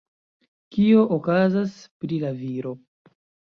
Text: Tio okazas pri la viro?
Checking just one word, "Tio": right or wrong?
wrong